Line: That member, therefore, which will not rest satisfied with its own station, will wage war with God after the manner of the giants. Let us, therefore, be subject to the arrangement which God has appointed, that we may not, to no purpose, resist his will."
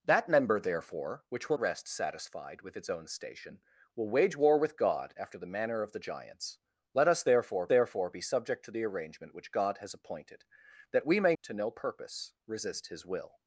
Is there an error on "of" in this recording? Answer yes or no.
no